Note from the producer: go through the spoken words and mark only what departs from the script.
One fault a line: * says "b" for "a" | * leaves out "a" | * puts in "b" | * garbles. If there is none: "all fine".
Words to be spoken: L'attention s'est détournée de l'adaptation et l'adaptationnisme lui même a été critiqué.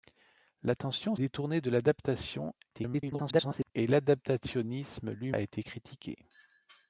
* leaves out "s'est"
* garbles
* leaves out "même"